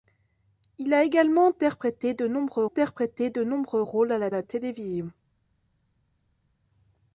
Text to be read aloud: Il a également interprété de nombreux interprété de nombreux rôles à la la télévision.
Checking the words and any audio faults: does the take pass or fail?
pass